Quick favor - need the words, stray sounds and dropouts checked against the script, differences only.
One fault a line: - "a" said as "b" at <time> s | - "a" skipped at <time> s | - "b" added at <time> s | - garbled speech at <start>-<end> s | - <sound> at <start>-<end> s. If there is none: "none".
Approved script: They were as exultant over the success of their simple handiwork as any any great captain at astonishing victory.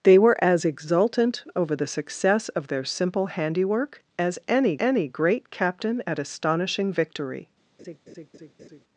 - laugh at 7.8-8.8 s